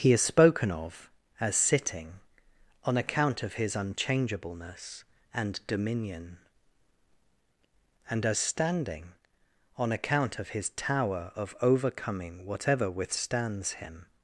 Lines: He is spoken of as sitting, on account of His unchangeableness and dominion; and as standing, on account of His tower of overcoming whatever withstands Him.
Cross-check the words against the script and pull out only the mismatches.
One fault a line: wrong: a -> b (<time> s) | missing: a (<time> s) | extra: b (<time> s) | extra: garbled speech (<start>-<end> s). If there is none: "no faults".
no faults